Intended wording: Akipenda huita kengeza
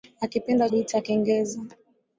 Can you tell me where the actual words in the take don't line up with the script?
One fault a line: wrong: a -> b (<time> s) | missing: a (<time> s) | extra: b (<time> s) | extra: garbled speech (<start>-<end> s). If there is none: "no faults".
no faults